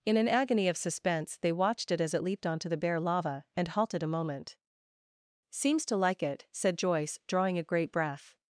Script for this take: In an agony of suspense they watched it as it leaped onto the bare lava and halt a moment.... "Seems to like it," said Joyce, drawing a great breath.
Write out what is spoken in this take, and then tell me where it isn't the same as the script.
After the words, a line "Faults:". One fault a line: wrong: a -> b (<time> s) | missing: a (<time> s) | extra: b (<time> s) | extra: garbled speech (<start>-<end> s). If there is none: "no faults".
In an agony of suspense they watched it as it leaped onto the bare lava and halted a moment.... "Seems to like it," said Joyce, drawing a great breath.
Faults:
wrong: halt -> halted (3.7 s)